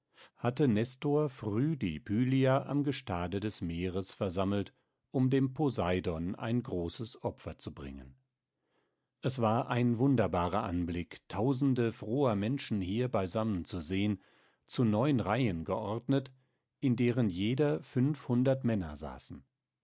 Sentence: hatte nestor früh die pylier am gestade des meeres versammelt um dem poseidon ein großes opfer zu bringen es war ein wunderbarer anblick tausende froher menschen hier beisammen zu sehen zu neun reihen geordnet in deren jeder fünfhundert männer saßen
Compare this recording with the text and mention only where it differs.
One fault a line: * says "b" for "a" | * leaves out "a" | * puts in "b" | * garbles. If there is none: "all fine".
all fine